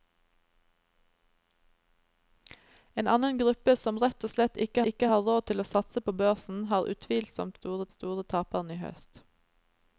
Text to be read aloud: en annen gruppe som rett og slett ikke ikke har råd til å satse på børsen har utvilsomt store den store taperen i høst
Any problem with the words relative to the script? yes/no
no